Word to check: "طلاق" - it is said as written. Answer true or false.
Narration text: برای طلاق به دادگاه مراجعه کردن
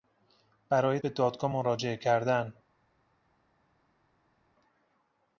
false